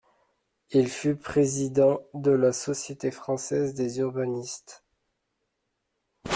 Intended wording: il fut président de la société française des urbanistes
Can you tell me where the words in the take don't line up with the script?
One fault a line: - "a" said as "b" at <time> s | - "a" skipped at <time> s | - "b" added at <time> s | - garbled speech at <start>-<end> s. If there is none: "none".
none